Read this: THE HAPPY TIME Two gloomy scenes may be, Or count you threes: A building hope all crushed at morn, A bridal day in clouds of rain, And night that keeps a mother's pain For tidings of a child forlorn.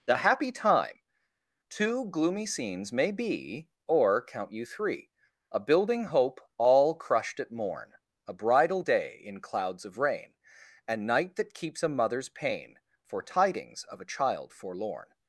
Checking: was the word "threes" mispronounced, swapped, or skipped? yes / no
yes